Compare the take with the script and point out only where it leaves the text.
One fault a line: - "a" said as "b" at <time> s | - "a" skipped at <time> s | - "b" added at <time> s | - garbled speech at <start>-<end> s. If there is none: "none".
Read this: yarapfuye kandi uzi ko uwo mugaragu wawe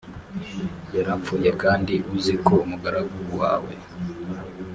- "uwo" skipped at 2.5 s